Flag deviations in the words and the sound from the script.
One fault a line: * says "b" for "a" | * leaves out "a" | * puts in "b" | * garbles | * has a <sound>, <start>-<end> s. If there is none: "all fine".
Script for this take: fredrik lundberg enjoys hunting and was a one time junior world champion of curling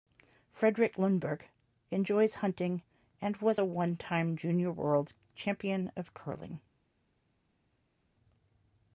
all fine